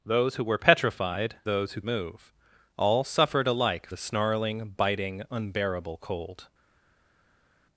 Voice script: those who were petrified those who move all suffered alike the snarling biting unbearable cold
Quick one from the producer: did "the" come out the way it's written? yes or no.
yes